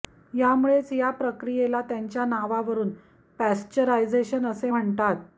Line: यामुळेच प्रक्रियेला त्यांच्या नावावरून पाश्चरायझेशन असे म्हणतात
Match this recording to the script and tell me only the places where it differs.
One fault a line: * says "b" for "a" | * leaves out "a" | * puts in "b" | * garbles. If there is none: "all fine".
* puts in "या"